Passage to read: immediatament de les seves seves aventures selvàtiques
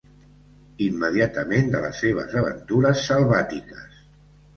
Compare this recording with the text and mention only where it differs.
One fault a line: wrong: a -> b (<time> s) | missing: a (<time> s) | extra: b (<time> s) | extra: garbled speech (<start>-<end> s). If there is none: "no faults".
missing: seves (2.4 s)